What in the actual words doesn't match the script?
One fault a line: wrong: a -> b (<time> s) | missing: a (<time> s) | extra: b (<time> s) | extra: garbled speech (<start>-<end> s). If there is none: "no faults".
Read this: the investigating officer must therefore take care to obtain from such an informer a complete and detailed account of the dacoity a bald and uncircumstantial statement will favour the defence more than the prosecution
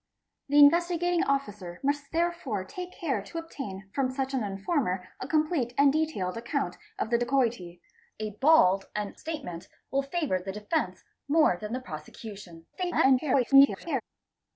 missing: uncircumstantial (9.2 s)
extra: garbled speech (12.7-14.0 s)